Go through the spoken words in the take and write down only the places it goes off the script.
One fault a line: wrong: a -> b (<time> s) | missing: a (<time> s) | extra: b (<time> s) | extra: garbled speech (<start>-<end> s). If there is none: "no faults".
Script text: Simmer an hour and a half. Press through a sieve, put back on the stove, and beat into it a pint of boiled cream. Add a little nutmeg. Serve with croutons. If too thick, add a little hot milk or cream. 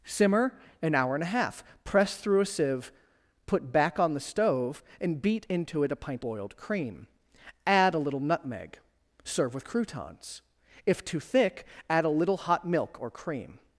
missing: of (6.2 s)